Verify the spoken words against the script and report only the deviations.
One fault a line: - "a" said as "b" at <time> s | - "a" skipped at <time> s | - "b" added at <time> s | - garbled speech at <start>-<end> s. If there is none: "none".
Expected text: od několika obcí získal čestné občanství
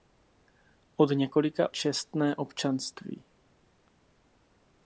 - "obcí získal" skipped at 1.8 s